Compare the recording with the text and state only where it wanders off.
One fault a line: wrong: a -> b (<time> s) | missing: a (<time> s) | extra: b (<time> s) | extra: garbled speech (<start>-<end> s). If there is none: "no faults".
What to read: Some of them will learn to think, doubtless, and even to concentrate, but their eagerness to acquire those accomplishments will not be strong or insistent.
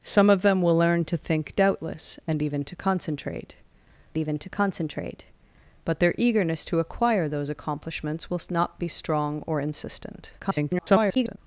extra: even to concentrate (4.2 s)
extra: garbled speech (10.4-11.4 s)